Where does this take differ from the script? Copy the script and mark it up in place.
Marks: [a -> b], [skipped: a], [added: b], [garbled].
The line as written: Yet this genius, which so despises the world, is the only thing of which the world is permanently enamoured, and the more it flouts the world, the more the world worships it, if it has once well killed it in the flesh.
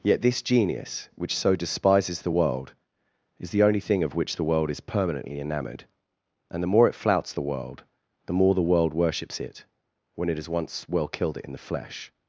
Yet this genius, which so despises the world, is the only thing of which the world is permanently enamoured, and the more it flouts the world, the more the world worships it, [if -> when] it has once well killed it in the flesh.